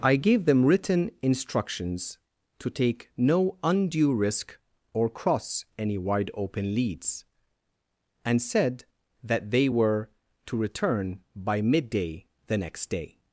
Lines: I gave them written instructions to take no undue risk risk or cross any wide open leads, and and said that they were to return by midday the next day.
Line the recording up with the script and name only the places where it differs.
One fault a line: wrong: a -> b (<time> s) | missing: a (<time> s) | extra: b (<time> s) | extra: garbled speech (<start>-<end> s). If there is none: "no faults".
missing: risk (4.6 s)
missing: and (8.4 s)